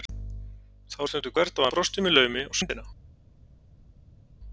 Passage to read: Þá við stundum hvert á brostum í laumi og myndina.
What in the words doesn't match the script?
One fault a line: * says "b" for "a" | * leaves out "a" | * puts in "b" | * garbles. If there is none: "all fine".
all fine